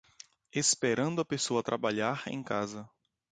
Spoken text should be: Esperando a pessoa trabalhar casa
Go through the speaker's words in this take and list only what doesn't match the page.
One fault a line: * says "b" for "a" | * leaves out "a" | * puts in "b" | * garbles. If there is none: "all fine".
* puts in "em"